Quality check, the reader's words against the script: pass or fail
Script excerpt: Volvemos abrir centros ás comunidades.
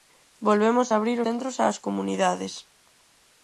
pass